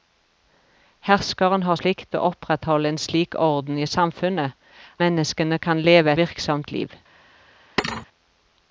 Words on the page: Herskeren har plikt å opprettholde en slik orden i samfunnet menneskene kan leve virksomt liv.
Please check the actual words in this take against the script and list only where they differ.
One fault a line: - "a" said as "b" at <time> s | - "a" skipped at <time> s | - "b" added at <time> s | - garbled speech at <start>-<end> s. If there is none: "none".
none